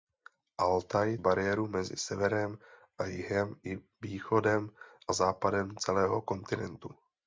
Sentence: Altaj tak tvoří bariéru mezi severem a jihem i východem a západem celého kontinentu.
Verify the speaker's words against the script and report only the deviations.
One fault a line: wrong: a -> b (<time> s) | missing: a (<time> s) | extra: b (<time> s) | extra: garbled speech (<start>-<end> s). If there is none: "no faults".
missing: tak tvoří (1.2 s)